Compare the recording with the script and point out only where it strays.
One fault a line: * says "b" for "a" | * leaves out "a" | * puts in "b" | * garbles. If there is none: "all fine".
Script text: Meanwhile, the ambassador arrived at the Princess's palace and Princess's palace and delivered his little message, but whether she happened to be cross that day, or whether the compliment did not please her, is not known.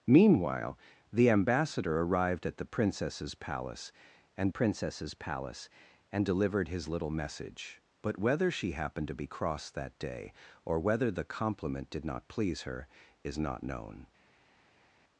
all fine